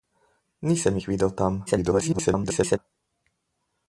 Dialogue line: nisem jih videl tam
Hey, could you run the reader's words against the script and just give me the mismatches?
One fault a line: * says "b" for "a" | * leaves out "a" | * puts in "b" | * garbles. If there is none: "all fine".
* garbles